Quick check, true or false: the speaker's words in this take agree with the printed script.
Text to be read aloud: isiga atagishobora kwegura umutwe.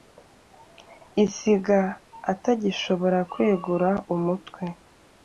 true